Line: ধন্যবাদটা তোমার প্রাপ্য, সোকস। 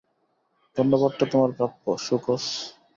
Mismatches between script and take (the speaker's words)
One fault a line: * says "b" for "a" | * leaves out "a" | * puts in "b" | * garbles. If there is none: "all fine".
all fine